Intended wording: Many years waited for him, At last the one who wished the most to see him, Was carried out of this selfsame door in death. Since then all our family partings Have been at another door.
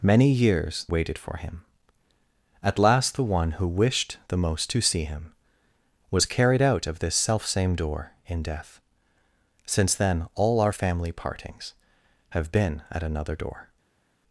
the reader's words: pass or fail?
pass